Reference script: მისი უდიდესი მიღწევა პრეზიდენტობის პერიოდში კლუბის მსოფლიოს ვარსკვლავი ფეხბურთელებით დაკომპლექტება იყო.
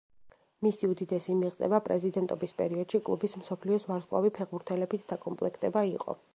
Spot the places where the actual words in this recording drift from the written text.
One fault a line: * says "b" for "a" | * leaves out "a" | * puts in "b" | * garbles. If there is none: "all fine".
all fine